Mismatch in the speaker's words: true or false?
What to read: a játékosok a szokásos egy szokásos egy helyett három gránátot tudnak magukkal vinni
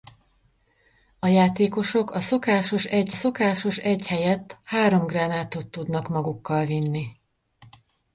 false